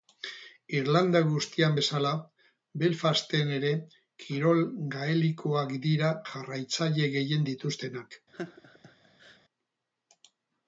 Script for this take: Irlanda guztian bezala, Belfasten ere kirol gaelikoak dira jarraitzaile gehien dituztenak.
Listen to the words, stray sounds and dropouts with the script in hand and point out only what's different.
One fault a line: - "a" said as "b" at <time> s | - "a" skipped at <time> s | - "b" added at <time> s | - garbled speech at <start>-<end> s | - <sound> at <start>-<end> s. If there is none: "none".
- laugh at 8.3-9.4 s